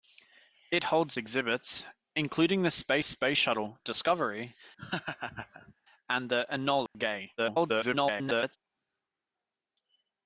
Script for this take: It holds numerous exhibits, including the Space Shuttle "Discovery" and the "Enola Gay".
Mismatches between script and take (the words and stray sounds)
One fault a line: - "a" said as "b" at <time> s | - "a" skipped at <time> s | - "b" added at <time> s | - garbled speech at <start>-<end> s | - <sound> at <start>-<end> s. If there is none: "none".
- "numerous" skipped at 1.2 s
- "Space" added at 3.0 s
- laugh at 4.8-5.7 s
- dropout at 6.9-7.0 s
- garbled speech at 7.4-8.6 s